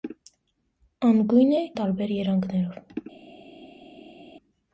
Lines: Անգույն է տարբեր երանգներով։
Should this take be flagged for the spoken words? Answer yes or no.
no